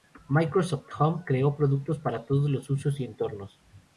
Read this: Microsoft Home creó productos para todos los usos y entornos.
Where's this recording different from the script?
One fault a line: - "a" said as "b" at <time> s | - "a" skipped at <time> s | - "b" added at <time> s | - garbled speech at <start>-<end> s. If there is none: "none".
none